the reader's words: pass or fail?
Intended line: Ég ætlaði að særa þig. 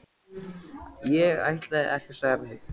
fail